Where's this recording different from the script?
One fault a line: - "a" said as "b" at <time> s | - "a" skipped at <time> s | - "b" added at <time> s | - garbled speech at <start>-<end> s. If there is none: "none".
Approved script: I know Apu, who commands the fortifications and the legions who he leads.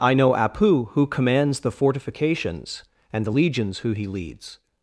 none